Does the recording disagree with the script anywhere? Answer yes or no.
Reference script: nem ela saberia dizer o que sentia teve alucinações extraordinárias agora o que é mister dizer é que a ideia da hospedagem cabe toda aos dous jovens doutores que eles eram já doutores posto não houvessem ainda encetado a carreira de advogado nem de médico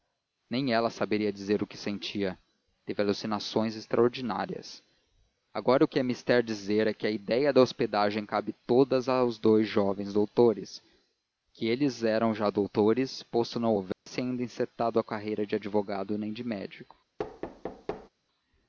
no